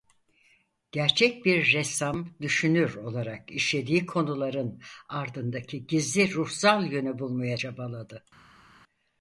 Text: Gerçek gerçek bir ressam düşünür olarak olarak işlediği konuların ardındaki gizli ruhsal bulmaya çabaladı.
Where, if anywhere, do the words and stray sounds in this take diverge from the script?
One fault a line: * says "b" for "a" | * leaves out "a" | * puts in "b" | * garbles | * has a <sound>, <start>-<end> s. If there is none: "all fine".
* leaves out "gerçek"
* leaves out "olarak"
* puts in "yönü"